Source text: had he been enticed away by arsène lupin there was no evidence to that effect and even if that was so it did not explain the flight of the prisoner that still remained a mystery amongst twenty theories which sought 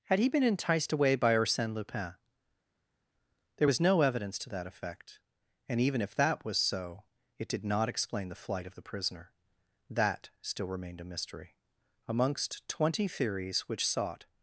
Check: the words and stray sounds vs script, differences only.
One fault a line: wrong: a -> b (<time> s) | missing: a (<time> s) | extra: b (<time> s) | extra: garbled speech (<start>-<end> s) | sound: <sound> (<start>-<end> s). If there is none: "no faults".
no faults